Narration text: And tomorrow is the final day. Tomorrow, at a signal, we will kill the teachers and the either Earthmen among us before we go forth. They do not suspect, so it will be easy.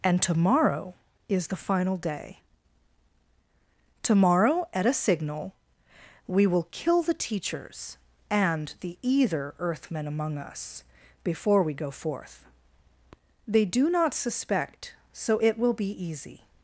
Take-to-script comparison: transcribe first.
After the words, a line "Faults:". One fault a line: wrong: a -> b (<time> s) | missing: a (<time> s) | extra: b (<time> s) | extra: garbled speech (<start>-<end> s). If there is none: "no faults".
And tomorrow is the final day. Tomorrow, at a signal, we will kill the teachers and the either Earthmen among us before we go forth. They do not suspect, so it will be easy.
Faults:
no faults